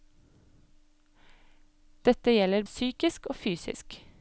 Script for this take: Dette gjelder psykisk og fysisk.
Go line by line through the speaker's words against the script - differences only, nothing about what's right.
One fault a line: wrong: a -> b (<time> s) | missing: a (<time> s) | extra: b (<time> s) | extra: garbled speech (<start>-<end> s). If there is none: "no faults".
no faults